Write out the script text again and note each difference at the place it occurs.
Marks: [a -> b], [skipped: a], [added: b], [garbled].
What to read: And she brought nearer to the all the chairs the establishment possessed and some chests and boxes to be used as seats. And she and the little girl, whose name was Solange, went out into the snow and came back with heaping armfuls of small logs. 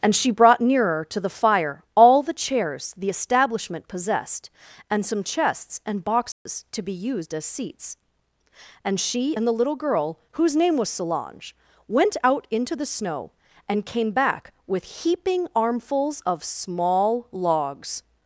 And she brought nearer to the [added: fire] all the chairs the establishment possessed and some chests and boxes to be used as seats. And she and the little girl, whose name was Solange, went out into the snow and came back with heaping armfuls of small logs.